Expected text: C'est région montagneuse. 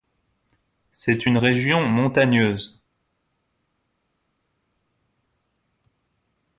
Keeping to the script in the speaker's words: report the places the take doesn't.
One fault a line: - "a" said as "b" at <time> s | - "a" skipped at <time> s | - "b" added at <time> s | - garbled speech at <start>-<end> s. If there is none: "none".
- "une" added at 1.2 s